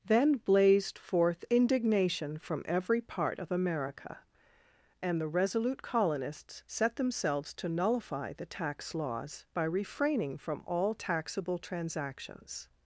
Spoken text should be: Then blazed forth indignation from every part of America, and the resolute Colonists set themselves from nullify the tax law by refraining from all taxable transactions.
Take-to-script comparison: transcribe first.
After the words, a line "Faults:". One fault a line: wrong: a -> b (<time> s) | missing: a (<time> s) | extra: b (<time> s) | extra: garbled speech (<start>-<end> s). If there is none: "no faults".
Then blazed forth indignation from every part of America, and the resolute Colonists set themselves to nullify the tax laws by refraining from all taxable transactions.
Faults:
wrong: from -> to (7.5 s)
wrong: law -> laws (8.9 s)